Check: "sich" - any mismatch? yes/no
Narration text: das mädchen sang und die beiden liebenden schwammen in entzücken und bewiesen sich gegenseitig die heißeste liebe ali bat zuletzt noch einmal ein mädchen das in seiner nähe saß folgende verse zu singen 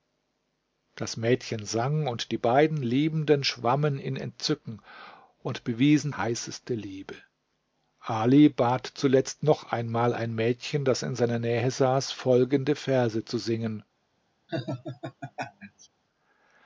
yes